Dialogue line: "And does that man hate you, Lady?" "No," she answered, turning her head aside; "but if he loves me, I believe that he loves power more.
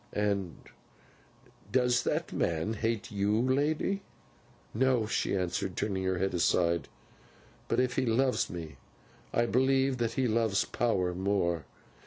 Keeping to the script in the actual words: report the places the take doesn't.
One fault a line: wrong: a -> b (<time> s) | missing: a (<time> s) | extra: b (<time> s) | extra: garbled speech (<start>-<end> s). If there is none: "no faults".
no faults